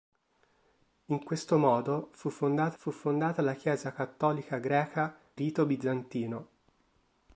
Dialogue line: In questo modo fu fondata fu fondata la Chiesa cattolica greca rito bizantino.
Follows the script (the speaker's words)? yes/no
yes